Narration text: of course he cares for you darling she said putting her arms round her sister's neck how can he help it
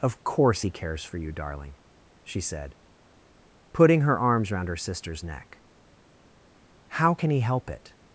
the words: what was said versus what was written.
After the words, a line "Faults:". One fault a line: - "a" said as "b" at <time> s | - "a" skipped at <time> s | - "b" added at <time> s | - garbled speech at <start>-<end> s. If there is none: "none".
of course he cares for you darling she said putting her arms round her sister's neck how can he help it
Faults:
none